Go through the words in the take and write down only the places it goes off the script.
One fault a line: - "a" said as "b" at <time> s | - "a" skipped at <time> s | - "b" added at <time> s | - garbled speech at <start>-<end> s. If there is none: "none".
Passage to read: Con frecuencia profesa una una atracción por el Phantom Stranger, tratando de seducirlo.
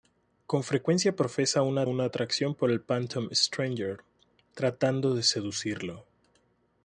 none